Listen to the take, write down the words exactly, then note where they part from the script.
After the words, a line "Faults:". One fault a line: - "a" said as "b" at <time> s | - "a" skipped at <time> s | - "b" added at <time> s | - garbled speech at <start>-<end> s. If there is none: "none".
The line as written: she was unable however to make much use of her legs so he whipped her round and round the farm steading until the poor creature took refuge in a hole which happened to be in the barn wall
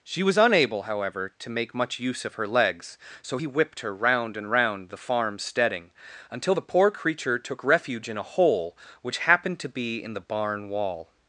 she was unable however to make much use of her legs so he whipped her round and round the farm steading until the poor creature took refuge in a hole which happened to be in the barn wall
Faults:
none